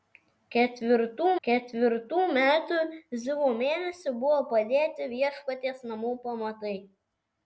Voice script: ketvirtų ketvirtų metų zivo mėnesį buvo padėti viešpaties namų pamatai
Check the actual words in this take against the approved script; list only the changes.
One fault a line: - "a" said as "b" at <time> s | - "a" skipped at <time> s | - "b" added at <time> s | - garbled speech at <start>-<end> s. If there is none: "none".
none